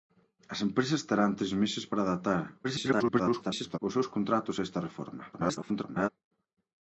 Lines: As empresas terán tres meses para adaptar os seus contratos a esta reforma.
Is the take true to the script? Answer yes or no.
no